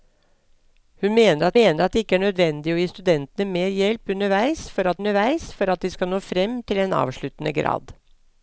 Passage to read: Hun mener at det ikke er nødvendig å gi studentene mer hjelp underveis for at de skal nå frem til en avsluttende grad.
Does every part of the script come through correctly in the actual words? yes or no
no